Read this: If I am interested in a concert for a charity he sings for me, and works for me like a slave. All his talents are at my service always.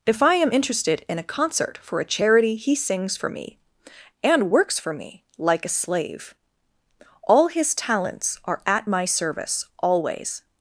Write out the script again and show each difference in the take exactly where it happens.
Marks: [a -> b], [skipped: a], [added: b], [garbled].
If I am interested in a concert for a charity he sings for me, and works for me like a slave. All his talents are at my service always.